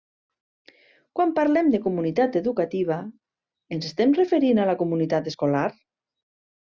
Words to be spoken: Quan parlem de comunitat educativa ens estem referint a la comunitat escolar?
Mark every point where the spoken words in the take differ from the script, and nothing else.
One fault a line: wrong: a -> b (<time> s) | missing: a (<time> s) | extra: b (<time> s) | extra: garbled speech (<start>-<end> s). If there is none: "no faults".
no faults